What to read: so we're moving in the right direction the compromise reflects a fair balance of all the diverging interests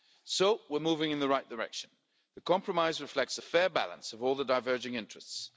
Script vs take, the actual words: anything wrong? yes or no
no